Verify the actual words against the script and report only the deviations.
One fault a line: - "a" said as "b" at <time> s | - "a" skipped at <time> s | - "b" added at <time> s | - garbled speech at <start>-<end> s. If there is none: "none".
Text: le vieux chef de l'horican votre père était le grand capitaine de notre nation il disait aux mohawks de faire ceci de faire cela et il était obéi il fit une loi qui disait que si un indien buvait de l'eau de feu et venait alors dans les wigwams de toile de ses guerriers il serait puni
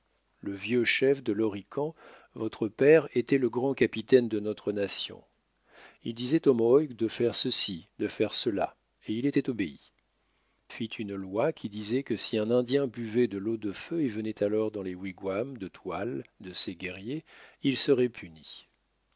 - "il" skipped at 9.9 s